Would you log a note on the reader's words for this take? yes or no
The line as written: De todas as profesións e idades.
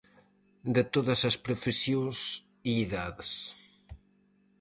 no